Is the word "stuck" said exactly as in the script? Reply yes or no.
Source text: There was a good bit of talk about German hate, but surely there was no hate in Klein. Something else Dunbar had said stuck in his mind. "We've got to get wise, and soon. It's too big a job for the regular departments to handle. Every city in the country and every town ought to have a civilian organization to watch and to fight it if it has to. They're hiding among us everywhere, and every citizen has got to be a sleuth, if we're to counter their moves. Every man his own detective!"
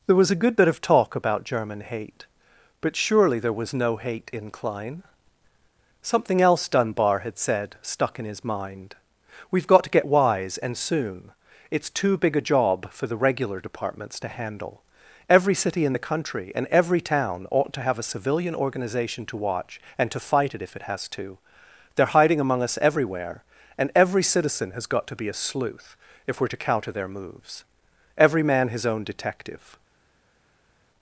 yes